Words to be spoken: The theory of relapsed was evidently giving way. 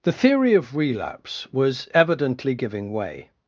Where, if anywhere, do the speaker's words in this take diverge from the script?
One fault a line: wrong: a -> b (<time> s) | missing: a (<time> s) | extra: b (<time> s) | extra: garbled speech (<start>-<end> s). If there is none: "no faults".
wrong: relapsed -> relapse (0.8 s)